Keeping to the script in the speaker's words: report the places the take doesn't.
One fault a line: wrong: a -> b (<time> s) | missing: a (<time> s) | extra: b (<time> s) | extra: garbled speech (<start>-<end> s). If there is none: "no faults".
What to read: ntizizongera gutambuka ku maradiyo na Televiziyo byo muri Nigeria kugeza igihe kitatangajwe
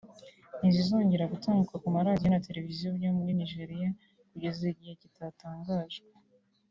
no faults